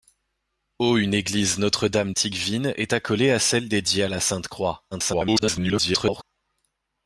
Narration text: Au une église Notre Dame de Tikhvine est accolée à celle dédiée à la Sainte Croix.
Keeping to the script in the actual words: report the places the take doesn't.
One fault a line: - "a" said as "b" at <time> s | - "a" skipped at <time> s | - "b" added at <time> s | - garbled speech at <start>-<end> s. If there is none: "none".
- "de" skipped at 2.1 s
- garbled speech at 4.9-6.2 s